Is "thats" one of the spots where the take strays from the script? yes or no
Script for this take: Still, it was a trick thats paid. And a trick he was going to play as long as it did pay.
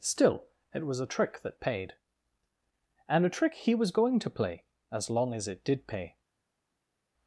yes